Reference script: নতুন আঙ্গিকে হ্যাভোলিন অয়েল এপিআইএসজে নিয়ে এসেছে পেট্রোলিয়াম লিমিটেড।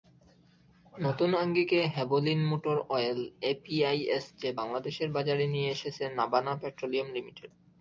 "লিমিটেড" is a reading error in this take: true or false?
false